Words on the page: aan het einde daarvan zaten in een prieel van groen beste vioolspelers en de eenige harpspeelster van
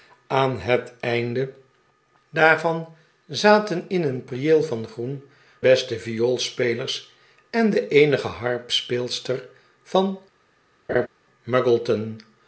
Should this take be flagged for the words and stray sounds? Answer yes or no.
yes